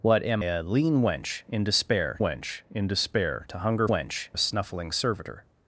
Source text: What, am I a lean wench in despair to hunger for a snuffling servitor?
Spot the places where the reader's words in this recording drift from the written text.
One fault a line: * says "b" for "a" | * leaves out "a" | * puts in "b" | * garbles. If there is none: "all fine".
* leaves out "I"
* puts in "wench in despair"
* says "wench" for "for"